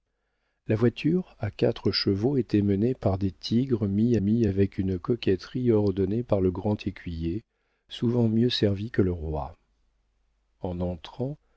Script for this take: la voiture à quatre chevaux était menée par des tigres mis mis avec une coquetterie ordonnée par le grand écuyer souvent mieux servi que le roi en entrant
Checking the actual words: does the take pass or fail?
pass